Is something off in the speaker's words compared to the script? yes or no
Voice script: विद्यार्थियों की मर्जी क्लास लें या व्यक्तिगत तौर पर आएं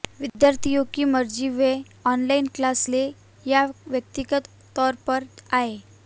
yes